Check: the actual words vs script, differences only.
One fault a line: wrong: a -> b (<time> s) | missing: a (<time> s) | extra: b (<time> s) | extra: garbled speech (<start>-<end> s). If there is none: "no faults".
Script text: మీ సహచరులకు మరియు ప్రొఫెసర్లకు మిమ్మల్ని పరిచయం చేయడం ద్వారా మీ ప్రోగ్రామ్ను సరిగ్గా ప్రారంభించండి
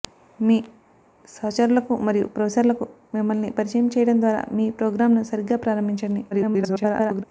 extra: garbled speech (6.3-7.2 s)